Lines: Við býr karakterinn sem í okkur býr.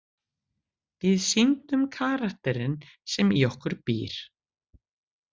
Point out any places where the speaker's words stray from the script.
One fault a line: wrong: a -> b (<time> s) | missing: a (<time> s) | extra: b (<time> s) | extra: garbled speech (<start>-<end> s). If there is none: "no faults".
wrong: býr -> sýndum (1.2 s)